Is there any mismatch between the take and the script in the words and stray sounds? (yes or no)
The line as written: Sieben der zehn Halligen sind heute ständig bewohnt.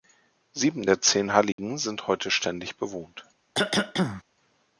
yes